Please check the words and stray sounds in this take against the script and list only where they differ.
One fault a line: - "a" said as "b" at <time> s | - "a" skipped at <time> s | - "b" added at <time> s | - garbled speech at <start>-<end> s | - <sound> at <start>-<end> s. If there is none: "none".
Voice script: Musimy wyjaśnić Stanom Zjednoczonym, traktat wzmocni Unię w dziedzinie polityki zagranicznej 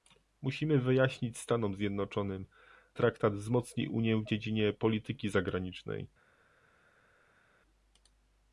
none